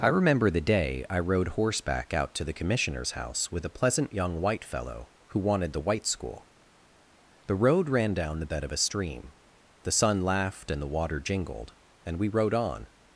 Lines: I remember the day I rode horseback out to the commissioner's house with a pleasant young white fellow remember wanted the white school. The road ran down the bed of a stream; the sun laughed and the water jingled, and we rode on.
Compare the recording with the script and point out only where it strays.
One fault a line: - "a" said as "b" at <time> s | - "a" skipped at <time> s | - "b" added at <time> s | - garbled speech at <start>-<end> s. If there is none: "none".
- "remember" said as "who" at 5.3 s